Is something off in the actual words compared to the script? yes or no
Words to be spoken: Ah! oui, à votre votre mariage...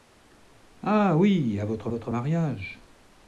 no